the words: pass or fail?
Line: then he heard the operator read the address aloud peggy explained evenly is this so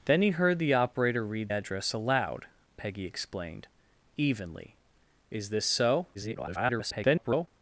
fail